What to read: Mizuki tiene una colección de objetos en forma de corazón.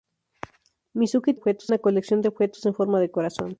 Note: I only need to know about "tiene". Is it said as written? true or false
false